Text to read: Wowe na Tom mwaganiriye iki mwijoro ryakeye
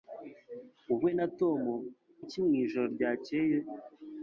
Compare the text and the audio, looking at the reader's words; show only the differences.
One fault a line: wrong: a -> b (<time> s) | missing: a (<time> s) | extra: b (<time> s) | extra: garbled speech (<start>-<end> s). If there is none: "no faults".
missing: mwaganiriye (1.6 s)